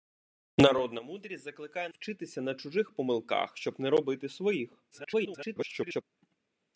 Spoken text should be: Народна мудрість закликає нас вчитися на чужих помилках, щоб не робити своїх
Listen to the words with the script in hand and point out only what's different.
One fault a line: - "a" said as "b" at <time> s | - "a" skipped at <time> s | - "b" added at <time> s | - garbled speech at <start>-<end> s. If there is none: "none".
- "нас" skipped at 1.9 s
- garbled speech at 4.9-6.0 s